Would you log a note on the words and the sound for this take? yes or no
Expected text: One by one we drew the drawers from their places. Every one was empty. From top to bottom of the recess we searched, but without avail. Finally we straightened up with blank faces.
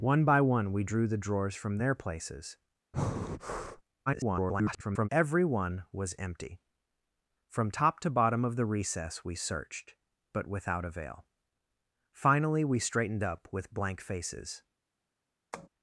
yes